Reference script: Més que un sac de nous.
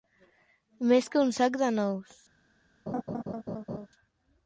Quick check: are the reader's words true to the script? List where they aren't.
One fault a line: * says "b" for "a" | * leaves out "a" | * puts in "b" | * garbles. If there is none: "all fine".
all fine